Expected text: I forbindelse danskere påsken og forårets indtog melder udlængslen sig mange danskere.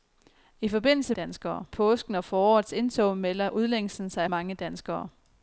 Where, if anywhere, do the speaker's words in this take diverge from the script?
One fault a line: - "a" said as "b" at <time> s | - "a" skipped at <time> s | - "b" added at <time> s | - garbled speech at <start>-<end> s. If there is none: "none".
none